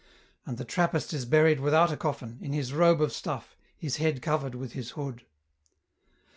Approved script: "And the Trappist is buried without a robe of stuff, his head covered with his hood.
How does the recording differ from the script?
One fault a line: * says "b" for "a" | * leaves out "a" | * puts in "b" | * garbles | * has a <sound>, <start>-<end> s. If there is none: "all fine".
* puts in "coffin in his"